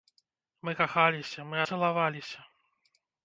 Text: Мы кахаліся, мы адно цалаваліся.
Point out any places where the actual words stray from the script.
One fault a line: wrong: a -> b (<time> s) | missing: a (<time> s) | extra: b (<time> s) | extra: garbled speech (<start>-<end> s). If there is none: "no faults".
missing: адно (1.6 s)